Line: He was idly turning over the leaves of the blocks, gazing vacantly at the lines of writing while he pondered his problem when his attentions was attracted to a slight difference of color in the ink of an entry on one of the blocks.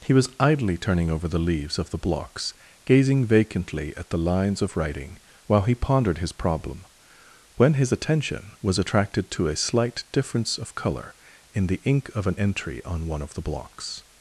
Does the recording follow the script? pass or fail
fail